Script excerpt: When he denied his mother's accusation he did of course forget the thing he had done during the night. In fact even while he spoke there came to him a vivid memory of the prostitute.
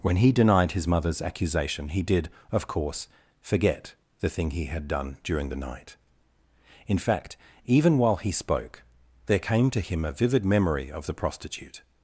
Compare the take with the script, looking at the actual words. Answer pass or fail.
pass